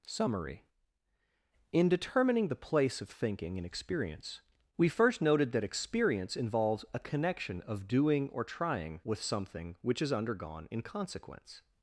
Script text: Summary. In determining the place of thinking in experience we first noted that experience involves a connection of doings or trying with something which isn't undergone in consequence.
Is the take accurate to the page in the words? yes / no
no